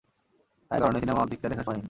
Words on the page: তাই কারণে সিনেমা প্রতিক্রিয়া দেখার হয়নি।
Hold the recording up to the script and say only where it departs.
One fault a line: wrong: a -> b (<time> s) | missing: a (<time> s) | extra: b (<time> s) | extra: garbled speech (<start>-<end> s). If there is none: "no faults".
no faults